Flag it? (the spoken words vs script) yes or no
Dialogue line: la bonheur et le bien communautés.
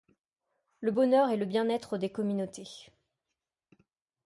yes